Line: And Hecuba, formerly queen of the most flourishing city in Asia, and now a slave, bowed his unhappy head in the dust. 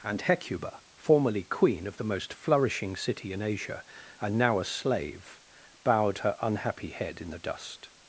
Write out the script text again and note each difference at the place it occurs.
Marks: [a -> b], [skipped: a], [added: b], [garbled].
And Hecuba, formerly queen of the most flourishing city in Asia, and now a slave, bowed [his -> her] unhappy head in the dust.